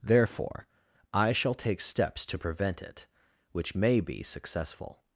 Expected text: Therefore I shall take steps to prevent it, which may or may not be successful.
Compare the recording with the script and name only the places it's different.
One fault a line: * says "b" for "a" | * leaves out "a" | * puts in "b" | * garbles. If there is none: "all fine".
* leaves out "or may not"